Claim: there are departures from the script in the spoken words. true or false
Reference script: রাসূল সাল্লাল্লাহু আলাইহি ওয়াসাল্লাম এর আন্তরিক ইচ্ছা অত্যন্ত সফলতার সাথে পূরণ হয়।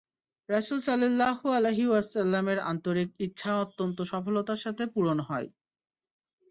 false